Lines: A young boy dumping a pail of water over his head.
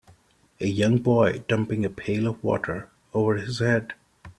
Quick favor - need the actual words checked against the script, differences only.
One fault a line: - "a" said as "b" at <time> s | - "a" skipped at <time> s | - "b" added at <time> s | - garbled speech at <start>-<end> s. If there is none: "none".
none